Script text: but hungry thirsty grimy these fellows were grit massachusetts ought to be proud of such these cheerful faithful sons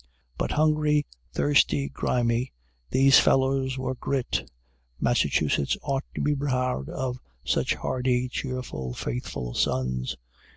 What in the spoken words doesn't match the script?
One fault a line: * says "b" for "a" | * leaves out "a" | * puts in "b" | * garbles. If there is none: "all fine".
* says "hardy" for "these"